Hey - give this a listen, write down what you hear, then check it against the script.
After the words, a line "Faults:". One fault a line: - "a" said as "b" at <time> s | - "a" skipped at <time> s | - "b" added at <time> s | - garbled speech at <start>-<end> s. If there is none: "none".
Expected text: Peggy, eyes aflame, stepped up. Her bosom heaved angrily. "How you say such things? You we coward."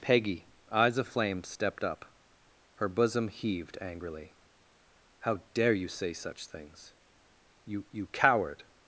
Peggy, eyes aflame, stepped up. Her bosom heaved angrily. "How dare you say such things? You you coward."
Faults:
- "dare" added at 5.5 s
- "we" said as "you" at 7.9 s